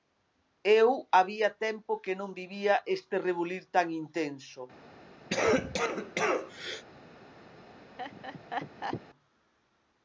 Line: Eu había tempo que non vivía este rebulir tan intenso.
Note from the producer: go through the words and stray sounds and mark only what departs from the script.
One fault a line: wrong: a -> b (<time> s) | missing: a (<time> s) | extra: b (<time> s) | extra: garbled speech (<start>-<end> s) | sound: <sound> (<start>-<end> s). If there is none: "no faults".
sound: cough (5.3-6.8 s)
sound: laugh (8.0-9.0 s)